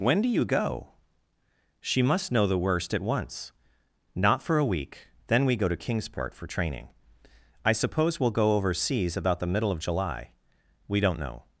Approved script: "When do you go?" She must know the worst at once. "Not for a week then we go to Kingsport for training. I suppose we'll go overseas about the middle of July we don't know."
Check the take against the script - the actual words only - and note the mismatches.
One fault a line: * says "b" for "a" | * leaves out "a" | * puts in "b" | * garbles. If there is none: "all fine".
all fine